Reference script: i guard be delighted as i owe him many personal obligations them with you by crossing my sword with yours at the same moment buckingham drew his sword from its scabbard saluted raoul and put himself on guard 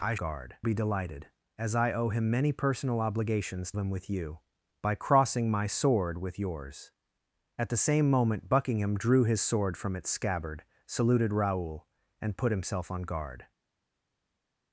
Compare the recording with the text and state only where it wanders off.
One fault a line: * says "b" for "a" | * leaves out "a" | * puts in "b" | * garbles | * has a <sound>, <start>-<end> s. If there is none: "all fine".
all fine